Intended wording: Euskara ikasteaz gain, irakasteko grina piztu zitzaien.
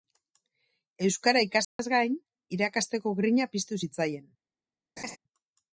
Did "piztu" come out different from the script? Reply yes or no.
no